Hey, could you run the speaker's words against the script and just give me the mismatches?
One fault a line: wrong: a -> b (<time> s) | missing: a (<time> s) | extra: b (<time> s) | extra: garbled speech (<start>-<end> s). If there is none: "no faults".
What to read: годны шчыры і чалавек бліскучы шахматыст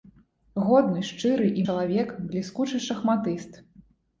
no faults